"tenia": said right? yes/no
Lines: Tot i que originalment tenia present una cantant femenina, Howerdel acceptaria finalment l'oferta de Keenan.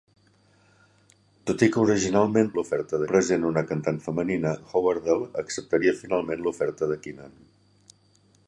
no